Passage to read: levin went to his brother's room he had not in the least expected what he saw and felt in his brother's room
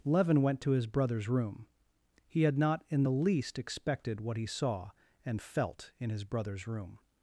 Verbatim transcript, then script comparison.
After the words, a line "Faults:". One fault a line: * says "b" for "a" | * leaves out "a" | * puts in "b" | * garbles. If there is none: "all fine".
levin went to his brother's room he had not in the least expected what he saw and felt in his brother's room
Faults:
all fine